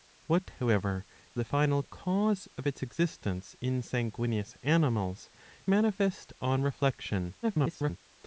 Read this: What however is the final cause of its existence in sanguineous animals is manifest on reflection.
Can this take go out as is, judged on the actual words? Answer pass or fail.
fail